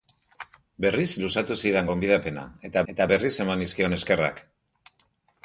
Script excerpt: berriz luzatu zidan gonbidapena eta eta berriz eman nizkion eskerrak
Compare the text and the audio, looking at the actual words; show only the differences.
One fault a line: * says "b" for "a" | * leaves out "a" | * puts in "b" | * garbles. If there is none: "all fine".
all fine